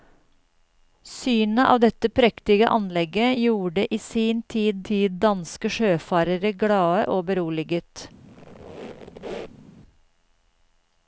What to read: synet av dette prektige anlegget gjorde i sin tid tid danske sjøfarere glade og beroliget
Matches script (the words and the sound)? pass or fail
fail